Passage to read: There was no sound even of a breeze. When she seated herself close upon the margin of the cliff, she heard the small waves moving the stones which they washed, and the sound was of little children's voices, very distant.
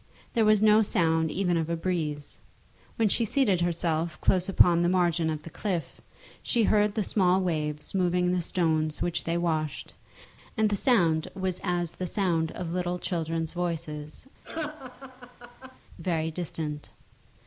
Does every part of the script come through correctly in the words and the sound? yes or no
no